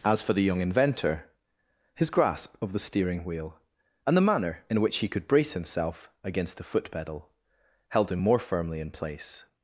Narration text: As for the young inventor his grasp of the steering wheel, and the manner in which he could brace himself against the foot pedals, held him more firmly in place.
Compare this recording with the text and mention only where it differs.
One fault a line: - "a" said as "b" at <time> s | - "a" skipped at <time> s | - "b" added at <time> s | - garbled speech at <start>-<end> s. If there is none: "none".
- "pedals" said as "pedal" at 6.9 s